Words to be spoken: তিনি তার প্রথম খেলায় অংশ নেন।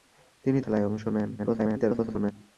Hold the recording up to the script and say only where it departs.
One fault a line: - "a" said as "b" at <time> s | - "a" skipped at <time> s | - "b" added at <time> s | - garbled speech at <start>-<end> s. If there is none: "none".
- "তার প্রথম" skipped at 0.6 s
- garbled speech at 1.4-2.3 s